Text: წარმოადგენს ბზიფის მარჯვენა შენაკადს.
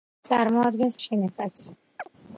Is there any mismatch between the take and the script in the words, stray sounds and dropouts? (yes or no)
yes